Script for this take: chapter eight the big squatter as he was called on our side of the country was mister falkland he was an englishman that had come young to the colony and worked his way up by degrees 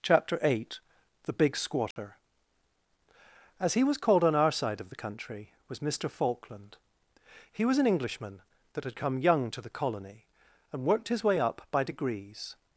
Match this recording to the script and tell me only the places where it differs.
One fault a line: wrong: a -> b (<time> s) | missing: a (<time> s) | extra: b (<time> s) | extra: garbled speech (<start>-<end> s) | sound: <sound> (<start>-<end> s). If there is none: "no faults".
sound: dropout (1.9-2.0 s)